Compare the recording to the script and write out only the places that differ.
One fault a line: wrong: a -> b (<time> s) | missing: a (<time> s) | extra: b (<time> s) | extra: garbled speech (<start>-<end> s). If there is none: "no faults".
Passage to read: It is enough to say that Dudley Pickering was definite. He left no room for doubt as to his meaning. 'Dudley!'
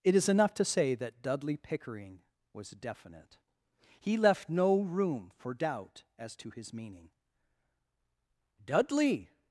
no faults